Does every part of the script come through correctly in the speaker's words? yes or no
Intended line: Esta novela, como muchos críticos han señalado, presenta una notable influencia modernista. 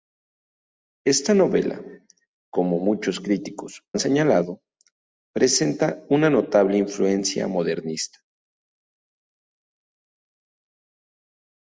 yes